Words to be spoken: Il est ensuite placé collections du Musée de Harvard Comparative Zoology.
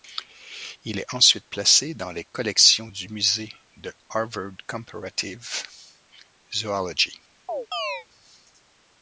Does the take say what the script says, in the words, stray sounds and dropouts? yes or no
no